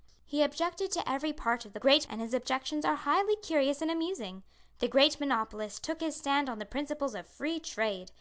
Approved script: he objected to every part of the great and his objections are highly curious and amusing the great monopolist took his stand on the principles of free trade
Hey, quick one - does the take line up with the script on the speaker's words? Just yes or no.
yes